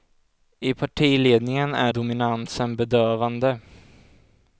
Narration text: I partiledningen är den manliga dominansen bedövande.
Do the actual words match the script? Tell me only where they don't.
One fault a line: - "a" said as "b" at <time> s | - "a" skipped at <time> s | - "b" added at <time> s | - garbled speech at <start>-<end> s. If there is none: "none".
- "den manliga" skipped at 1.9 s